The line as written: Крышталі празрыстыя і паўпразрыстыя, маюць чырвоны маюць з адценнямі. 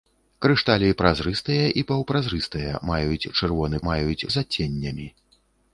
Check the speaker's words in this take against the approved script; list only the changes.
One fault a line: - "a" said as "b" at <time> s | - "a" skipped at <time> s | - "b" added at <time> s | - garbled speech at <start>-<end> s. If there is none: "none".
none